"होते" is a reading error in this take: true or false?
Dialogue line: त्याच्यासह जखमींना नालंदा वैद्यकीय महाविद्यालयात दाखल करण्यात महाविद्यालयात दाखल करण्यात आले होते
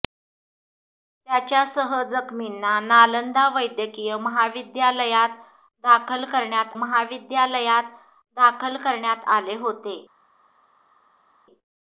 false